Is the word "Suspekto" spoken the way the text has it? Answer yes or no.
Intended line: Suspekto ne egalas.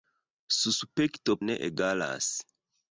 yes